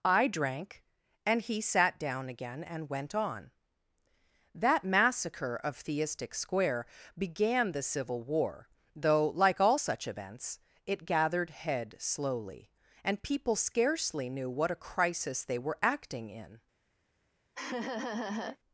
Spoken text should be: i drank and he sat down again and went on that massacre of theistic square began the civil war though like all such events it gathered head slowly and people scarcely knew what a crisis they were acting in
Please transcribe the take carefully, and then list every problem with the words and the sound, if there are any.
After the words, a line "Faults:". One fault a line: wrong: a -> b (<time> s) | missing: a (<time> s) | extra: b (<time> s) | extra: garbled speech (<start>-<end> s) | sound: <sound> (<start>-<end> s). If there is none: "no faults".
i drank and he sat down again and went on that massacre of theistic square began the civil war though like all such events it gathered head slowly and people scarcely knew what a crisis they were acting in
Faults:
sound: laugh (17.6-18.6 s)